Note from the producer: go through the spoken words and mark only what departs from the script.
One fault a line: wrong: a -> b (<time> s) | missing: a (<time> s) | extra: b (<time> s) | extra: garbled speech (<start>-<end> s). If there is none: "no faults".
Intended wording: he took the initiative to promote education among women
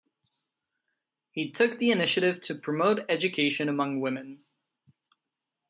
no faults